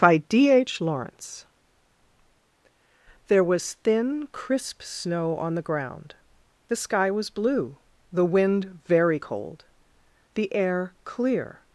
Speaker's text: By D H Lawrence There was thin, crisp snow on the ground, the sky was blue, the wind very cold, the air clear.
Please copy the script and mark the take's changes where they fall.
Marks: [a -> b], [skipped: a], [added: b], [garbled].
By D H Lawrence There was thin, crisp snow on the ground, the sky was blue, the wind very cold, the air clear.